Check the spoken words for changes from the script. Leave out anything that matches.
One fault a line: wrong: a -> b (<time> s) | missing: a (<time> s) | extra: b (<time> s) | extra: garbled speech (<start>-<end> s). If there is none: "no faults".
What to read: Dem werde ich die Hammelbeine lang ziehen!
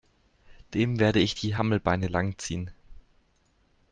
no faults